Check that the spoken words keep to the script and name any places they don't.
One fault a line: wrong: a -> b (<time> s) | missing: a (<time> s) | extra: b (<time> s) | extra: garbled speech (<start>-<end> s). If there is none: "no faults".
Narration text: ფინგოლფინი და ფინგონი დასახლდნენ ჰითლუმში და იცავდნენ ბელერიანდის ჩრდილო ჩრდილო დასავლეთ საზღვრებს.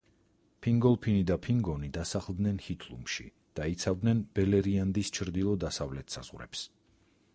missing: ჩრდილო (5.5 s)